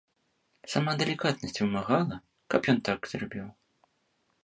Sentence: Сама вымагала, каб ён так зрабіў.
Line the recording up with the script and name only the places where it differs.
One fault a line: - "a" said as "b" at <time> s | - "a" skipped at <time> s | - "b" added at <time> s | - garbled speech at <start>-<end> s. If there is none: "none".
- "далікатнасць" added at 1.0 s